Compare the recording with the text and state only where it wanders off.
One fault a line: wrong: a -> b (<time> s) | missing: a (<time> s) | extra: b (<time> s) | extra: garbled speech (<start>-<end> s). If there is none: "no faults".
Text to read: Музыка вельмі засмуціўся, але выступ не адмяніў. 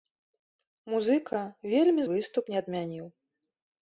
missing: засмуціўся але (2.0 s)